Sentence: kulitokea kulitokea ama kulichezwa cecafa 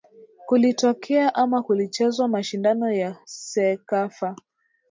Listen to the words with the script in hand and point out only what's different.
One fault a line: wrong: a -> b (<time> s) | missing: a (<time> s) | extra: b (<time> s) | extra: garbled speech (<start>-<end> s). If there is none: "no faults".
missing: kulitokea (1.4 s)
extra: mashindano ya (2.3 s)